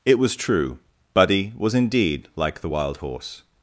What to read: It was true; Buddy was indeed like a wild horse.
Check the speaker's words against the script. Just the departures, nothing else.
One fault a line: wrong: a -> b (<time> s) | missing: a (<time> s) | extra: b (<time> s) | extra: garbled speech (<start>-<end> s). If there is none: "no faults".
wrong: a -> the (2.6 s)